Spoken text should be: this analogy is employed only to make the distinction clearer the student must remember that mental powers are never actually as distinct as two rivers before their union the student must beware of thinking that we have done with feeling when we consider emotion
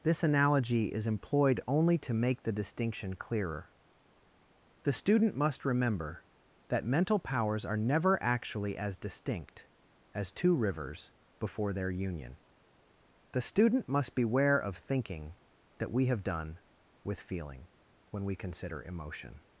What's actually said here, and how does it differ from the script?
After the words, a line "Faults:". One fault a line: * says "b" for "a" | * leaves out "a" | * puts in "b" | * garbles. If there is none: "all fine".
this analogy is employed only to make the distinction clearer the student must remember that mental powers are never actually as distinct as two rivers before their union the student must beware of thinking that we have done with feeling when we consider emotion
Faults:
all fine